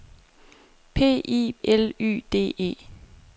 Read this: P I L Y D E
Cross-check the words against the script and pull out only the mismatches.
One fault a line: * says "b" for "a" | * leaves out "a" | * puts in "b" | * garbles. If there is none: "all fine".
all fine